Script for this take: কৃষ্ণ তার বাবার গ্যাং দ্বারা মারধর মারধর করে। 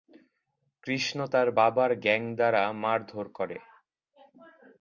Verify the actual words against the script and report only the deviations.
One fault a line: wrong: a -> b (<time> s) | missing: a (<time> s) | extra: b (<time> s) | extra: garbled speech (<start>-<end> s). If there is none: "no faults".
missing: মারধর (3.3 s)